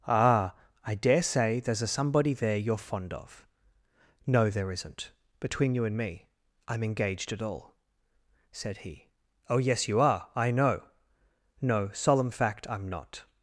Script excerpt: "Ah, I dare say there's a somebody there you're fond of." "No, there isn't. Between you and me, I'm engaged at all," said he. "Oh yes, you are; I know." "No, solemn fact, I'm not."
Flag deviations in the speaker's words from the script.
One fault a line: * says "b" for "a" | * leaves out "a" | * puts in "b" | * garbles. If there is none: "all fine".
all fine